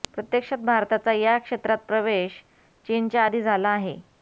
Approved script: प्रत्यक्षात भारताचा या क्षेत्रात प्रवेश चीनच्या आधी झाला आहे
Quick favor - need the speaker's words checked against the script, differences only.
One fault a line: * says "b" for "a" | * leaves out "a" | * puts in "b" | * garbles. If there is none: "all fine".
all fine